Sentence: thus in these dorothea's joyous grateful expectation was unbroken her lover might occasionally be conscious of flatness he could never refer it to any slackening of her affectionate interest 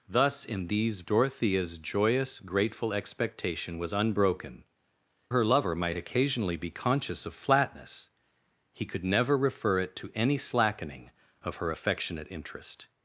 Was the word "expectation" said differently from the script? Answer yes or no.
no